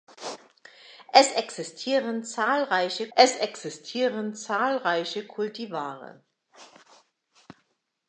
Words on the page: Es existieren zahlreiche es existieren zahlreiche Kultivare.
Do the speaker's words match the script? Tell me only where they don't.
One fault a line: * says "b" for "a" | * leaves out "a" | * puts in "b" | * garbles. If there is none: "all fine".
all fine